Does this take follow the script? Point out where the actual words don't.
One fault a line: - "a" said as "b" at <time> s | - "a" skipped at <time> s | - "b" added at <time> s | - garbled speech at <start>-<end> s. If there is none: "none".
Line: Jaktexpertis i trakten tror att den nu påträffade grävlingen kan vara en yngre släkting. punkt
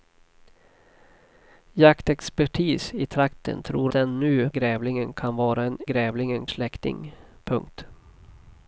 - "att" skipped at 3.9 s
- "påträffade" skipped at 4.5 s
- "yngre" said as "grävlingen" at 5.8 s